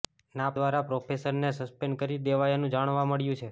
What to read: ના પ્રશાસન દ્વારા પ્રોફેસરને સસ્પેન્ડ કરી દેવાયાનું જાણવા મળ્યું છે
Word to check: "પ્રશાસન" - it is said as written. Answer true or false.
false